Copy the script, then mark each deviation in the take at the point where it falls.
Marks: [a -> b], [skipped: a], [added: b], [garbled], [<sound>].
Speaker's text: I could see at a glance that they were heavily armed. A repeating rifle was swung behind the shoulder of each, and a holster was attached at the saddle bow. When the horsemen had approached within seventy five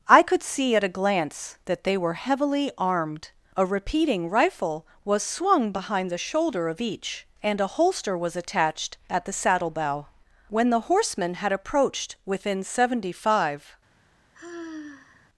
I could see at a glance that they were heavily armed. A repeating rifle was swung behind the shoulder of each, and a holster was attached at the saddle bow. When the horsemen had approached within seventy five [sigh]